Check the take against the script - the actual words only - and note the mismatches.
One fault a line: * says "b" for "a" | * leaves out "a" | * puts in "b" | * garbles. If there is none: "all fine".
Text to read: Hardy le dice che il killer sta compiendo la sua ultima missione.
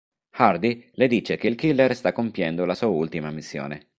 all fine